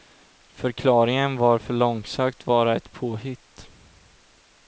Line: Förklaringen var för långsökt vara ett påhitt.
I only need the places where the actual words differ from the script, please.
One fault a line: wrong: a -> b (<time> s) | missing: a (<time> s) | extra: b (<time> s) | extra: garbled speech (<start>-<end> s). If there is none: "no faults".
no faults